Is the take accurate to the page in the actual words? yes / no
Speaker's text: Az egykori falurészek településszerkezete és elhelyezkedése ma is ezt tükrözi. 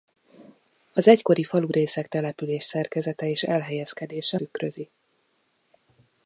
no